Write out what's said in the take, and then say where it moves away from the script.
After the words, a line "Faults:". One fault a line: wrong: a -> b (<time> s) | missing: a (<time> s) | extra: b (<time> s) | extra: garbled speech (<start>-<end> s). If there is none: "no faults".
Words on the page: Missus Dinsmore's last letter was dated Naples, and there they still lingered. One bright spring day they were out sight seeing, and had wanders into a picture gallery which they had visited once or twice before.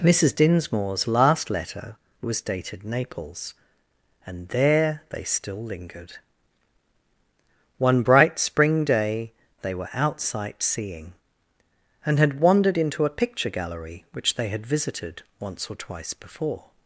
Missus Dinsmore's last letter was dated Naples, and there they still lingered. One bright spring day they were out sight seeing, and had wandered into a picture gallery which they had visited once or twice before.
Faults:
wrong: wanders -> wandered (12.4 s)